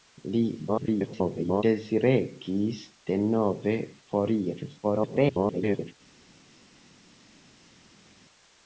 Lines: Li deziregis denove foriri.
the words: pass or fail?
fail